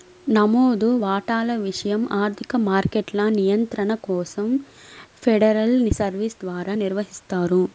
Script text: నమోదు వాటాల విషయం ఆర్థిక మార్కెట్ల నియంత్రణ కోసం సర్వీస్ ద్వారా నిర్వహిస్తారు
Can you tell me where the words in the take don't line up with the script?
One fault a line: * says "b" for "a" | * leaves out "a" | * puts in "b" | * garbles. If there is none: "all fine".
* puts in "ఫెడరల్"